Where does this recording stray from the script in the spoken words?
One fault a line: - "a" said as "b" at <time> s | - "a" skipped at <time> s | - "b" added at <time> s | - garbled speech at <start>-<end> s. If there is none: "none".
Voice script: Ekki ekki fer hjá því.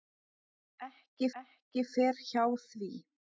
none